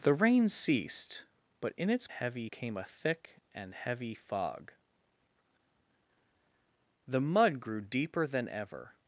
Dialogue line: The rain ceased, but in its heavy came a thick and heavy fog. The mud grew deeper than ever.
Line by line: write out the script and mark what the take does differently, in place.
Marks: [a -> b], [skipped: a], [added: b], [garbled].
The rain ceased, but in its heavy came a thick and heavy fog. The mud grew deeper than ever.